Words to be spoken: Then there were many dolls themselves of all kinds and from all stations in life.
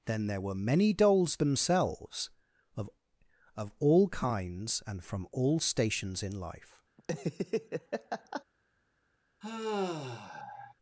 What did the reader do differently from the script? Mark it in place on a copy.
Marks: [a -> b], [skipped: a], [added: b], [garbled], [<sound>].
Then there were many dolls themselves of [added: of] all kinds and from all stations in life. [laugh] [sigh]